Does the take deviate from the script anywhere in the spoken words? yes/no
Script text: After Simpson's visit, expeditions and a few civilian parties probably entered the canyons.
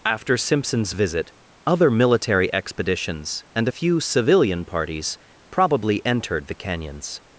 yes